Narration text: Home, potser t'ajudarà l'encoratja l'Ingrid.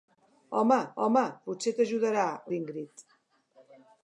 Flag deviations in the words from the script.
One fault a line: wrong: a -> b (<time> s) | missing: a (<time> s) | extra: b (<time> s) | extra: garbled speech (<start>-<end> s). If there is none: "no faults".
extra: home (1.0 s)
missing: l'encoratja (2.3 s)